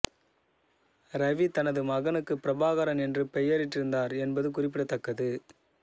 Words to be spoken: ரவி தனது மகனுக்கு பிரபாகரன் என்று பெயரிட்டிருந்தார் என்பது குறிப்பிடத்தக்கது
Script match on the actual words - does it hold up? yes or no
yes